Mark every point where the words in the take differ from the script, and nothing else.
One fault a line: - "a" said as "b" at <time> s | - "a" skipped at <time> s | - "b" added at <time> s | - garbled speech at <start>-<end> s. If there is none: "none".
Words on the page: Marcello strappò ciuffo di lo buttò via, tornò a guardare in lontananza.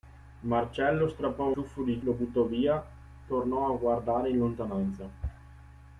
none